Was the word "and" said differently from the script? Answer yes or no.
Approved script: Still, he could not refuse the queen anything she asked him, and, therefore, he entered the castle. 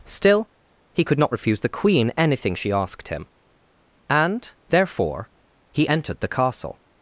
no